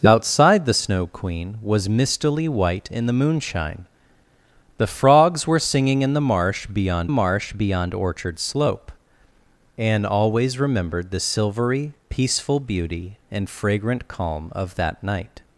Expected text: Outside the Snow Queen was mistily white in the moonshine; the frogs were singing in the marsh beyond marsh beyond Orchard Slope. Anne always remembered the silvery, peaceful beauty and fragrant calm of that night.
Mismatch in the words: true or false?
false